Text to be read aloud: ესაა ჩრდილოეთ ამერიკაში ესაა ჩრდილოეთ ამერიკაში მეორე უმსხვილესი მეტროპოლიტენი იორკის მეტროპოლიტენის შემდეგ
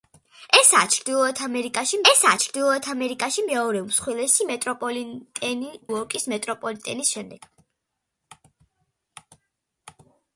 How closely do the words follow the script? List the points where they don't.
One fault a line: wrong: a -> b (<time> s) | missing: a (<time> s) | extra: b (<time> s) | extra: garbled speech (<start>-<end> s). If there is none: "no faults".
no faults